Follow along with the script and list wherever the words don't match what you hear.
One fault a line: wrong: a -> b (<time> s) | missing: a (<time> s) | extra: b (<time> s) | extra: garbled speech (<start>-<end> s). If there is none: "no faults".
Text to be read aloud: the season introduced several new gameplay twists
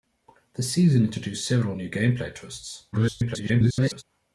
extra: garbled speech (2.9-4.0 s)